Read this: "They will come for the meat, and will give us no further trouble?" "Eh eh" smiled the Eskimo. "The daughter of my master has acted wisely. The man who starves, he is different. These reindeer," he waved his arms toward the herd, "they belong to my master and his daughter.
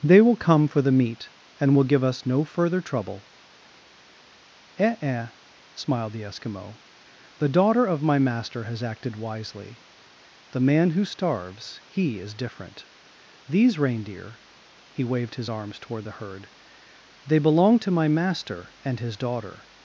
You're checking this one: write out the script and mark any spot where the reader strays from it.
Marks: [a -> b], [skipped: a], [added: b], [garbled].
"They will come for the meat, and will give us no further trouble?" "Eh eh" smiled the Eskimo. "The daughter of my master has acted wisely. The man who starves, he is different. These reindeer," he waved his arms toward the herd, "they belong to my master and his daughter.